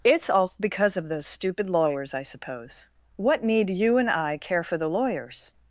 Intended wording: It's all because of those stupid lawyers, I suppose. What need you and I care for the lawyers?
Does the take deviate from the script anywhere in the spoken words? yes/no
no